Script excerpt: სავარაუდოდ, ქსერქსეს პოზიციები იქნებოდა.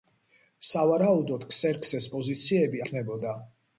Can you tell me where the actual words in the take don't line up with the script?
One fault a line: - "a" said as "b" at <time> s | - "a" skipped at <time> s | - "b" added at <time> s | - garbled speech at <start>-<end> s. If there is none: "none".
none